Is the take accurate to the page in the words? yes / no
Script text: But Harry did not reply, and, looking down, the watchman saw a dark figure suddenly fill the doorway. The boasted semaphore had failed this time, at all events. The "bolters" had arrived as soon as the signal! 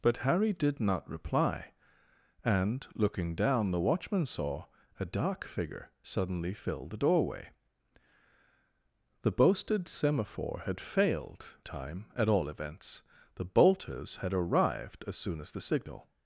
no